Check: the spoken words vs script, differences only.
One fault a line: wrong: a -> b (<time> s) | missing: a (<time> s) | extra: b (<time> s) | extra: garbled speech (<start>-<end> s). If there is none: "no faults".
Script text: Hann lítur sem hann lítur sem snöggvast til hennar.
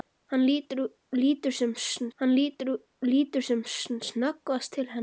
no faults